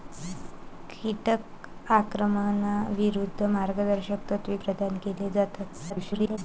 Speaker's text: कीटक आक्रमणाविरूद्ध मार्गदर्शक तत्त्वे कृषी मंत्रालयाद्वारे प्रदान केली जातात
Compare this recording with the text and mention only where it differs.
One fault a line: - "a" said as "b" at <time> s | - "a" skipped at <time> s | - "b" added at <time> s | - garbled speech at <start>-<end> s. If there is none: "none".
- "कृषी मंत्रालयाद्वारे" skipped at 4.6 s
- garbled speech at 5.9-6.4 s